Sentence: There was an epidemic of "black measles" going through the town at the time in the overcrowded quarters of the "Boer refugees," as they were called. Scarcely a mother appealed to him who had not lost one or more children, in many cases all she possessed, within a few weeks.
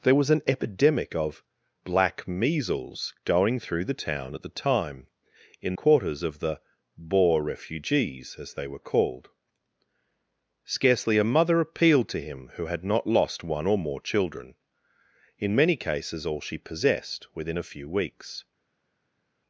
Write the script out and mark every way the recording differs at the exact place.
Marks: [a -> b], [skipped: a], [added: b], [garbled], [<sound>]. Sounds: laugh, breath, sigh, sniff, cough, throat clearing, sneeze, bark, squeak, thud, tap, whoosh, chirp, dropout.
There was an epidemic of "black measles" going through the town at the time in [skipped: the overcrowded] quarters of the "Boer refugees," as they were called. Scarcely a mother appealed to him who had not lost one or more children, in many cases all she possessed, within a few weeks.